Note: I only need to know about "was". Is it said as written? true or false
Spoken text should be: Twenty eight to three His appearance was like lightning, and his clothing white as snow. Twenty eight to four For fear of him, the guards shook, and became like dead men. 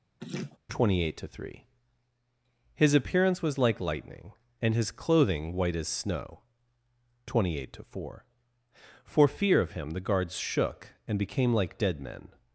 true